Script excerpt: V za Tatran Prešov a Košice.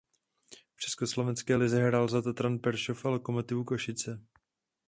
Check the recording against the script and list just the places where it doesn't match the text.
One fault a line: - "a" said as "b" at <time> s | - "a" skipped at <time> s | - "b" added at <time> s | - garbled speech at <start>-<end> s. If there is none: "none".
- "československé lize hrál" added at 0.8 s
- "Lokomotivu" added at 3.1 s